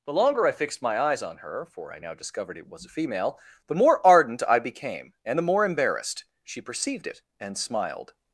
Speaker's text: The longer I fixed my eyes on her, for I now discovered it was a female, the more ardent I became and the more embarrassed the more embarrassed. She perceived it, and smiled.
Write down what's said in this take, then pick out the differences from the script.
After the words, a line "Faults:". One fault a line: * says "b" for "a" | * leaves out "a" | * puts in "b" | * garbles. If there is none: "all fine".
The longer I fixed my eyes on her, for I now discovered it was a female, the more ardent I became and the more embarrassed. She perceived it, and smiled.
Faults:
* leaves out "the more embarrassed"